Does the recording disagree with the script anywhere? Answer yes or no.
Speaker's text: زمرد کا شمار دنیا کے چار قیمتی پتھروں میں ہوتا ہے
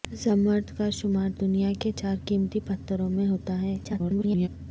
yes